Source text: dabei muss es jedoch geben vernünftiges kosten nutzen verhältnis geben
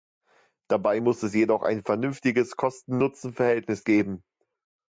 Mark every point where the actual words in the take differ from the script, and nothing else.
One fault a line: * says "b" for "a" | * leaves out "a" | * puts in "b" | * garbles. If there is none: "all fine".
* says "ein" for "geben"